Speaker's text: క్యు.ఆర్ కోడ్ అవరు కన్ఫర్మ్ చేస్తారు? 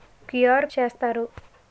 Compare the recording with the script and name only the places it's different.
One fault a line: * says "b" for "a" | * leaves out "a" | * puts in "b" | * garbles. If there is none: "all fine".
* leaves out "కోడ్ అవరు కన్ఫర్మ్"